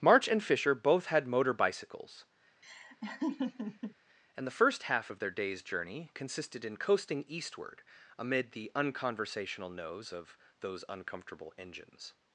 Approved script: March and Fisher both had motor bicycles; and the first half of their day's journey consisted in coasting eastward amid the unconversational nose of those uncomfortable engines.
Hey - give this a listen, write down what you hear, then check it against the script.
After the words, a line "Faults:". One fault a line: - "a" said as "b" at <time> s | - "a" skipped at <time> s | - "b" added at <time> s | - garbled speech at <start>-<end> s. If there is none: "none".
March and Fisher both had motor bicycles; and the first half of their day's journey consisted in coasting eastward amid the unconversational nose of those uncomfortable engines.
Faults:
none